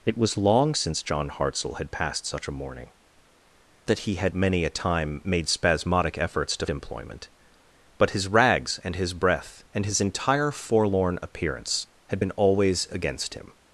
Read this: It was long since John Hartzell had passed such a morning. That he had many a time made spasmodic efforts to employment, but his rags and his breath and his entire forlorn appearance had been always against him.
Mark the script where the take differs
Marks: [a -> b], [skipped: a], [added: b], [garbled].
It was long since John Hartzell had passed such a morning. That he had many a time made spasmodic efforts to employment, but his rags and his breath and his entire forlorn appearance had been always against him.